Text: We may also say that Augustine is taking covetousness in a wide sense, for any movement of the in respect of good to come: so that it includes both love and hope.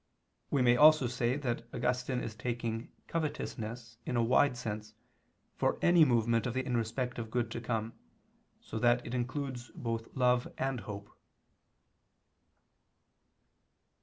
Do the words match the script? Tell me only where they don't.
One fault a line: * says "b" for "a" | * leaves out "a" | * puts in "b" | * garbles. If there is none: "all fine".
all fine